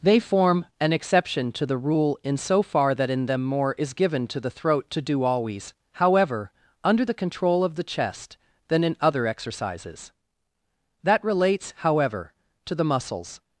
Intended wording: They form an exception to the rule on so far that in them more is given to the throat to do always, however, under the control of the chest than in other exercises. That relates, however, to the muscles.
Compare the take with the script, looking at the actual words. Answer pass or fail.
fail